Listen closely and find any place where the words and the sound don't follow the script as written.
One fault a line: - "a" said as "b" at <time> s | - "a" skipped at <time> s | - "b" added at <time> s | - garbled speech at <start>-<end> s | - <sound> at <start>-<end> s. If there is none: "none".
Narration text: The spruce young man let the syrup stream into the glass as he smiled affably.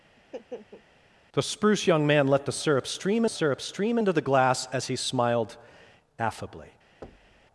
- laugh at 0.2-0.8 s
- "syrup stream" added at 3.3 s
- thud at 7.0-7.5 s